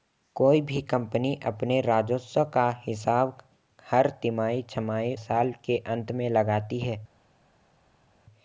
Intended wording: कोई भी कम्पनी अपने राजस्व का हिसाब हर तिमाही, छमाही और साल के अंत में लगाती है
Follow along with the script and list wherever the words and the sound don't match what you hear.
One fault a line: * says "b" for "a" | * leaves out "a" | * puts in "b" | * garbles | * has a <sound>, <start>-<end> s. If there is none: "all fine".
* leaves out "और"